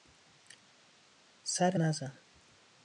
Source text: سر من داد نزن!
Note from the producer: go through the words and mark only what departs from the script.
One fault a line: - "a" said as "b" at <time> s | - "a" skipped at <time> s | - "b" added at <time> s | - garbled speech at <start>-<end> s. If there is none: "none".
- "من داد" skipped at 1.8 s